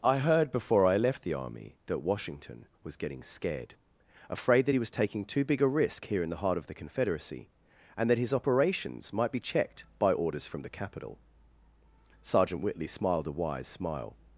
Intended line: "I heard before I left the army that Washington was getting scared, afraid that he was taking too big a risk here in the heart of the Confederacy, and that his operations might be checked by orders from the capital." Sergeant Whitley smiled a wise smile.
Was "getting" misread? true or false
false